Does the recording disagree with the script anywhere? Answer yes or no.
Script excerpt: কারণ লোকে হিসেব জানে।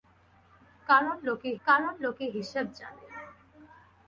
yes